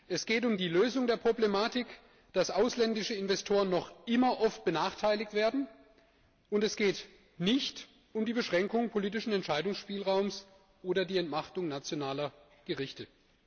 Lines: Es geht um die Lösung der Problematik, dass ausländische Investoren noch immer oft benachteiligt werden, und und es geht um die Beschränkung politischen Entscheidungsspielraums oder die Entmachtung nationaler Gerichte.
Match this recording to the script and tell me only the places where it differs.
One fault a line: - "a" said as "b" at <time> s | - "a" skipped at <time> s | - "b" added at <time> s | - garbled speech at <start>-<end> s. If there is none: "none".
- "und" skipped at 6.6 s
- "nicht" added at 7.4 s